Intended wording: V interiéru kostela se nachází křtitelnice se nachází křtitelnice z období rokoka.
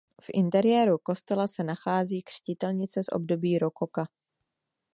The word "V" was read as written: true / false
true